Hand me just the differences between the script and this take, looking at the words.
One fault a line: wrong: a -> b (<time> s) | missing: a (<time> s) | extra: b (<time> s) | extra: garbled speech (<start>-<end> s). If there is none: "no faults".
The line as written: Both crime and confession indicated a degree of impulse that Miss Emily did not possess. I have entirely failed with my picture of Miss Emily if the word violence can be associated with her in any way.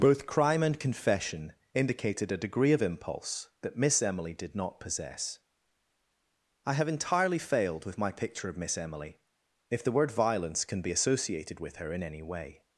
no faults